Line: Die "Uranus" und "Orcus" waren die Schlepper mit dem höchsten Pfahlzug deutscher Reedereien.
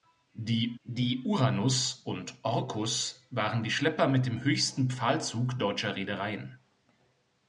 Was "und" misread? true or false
false